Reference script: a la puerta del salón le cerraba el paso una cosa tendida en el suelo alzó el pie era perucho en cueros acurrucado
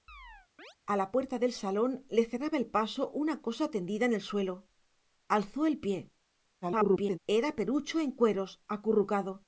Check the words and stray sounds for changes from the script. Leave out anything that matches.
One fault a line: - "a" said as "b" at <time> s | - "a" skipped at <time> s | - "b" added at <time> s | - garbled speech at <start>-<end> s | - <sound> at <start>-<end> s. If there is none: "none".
- chirp at 0.1-0.8 s
- garbled speech at 6.6-7.2 s